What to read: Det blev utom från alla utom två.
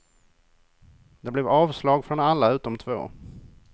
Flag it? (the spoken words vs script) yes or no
yes